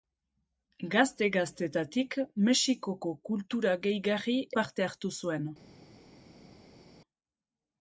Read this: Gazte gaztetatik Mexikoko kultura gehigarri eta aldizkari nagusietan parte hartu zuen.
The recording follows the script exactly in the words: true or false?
false